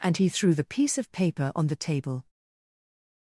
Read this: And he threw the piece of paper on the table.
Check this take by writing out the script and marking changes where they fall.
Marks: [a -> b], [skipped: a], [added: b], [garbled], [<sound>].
And he threw the piece of paper on the table.